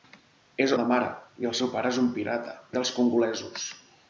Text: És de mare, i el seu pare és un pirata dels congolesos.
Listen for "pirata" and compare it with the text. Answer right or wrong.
right